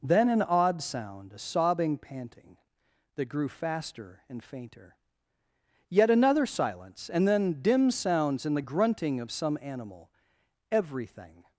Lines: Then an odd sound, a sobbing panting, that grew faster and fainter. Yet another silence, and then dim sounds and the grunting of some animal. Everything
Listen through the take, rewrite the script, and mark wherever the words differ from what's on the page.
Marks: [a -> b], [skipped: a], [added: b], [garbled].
Then an odd sound, a sobbing panting, that grew faster and fainter. Yet another silence, and then dim sounds and the grunting of some animal. Everything